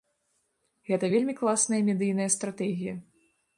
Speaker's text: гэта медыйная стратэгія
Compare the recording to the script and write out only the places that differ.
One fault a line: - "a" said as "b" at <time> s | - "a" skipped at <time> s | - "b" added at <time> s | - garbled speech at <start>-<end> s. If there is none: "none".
- "вельмі класная" added at 1.2 s